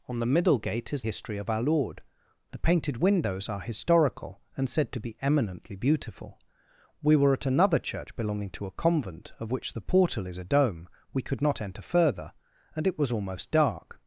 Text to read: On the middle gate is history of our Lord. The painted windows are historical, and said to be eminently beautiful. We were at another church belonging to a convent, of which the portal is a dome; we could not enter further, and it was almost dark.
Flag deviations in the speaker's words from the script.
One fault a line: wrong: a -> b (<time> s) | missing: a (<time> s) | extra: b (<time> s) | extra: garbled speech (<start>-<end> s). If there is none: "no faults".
no faults